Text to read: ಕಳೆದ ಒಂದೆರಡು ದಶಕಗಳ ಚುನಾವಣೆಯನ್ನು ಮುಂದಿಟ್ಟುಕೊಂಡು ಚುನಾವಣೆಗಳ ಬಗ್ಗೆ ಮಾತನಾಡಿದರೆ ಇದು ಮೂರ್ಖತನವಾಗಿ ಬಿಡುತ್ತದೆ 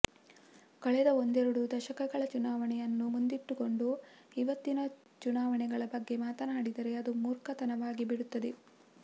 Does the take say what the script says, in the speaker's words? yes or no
no